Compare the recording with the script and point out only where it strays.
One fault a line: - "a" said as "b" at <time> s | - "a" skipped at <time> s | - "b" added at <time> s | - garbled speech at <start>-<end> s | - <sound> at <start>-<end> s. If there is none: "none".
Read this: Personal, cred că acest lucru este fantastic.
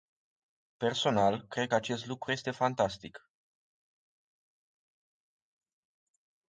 none